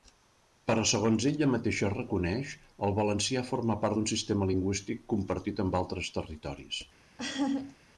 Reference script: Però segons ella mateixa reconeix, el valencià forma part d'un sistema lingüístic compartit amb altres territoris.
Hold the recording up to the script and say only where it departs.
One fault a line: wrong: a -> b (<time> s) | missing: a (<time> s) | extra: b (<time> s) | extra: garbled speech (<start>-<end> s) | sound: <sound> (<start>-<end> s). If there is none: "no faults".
sound: laugh (7.2-7.8 s)